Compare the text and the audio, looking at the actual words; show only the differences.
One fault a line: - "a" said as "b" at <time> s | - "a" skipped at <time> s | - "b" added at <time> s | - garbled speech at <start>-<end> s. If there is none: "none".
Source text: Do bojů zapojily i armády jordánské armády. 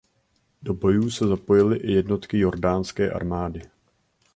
- "se" added at 1.1 s
- "armády" said as "jednotky" at 1.9 s